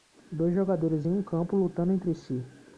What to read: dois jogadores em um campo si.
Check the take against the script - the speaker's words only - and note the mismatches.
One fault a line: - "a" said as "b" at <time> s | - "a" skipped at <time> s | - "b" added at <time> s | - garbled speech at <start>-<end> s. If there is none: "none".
- "lutando entre" added at 1.6 s